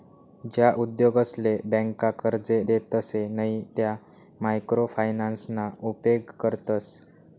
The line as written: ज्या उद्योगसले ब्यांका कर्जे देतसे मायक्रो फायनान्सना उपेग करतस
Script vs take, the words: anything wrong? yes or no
yes